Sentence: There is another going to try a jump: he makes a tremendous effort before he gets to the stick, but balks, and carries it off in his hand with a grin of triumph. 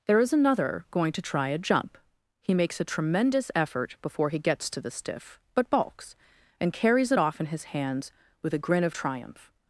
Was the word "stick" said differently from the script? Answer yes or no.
yes